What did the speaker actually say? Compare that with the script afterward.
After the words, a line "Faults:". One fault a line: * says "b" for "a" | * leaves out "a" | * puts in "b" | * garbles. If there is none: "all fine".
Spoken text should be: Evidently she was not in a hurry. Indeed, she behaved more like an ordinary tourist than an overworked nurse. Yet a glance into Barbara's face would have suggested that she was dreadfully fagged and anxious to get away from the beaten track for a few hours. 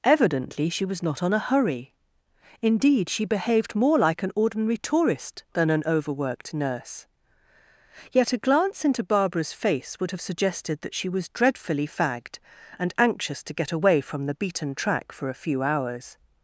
Evidently she was not on a hurry. Indeed, she behaved more like an ordinary tourist than an overworked nurse. Yet a glance into Barbara's face would have suggested that she was dreadfully fagged and anxious to get away from the beaten track for a few hours.
Faults:
* says "on" for "in"